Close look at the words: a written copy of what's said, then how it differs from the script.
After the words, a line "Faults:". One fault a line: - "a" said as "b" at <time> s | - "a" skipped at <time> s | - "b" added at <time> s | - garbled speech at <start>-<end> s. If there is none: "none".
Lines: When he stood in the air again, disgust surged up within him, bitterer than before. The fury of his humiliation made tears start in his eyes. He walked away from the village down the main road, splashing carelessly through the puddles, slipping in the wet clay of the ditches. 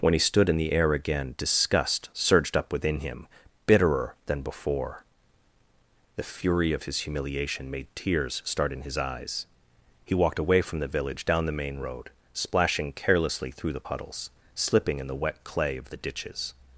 When he stood in the air again, disgust surged up within him, bitterer than before. The fury of his humiliation made tears start in his eyes. He walked away from the village down the main road, splashing carelessly through the puddles, slipping in the wet clay of the ditches.
Faults:
none